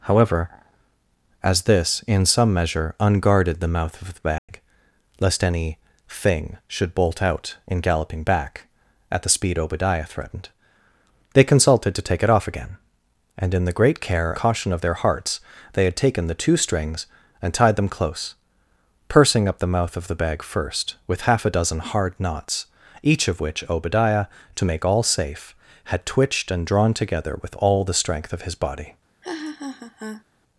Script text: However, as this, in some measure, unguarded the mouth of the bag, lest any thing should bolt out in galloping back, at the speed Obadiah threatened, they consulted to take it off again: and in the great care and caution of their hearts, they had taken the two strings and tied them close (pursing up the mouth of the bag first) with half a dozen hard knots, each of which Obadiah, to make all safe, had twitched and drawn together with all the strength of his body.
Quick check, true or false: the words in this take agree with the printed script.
false